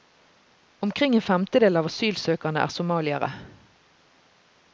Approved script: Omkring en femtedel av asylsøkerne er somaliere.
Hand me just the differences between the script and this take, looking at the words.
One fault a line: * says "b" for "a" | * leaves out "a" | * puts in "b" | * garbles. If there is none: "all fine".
all fine